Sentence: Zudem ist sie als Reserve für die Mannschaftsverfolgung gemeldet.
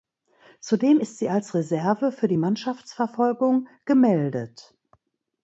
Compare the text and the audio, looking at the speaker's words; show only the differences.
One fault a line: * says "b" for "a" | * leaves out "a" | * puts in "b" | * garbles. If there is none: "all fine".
all fine